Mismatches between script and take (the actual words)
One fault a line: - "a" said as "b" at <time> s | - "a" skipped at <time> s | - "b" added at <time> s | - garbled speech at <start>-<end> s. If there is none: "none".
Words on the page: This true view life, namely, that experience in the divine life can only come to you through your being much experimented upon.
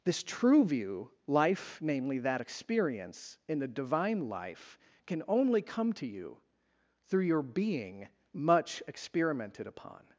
none